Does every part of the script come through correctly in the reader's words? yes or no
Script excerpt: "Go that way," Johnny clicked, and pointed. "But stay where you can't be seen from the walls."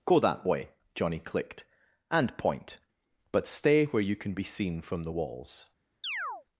no